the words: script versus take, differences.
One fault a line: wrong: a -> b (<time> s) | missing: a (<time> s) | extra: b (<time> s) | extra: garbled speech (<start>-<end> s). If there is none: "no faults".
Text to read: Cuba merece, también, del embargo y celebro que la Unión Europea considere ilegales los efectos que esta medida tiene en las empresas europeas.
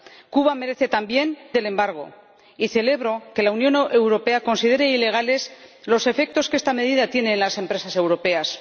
no faults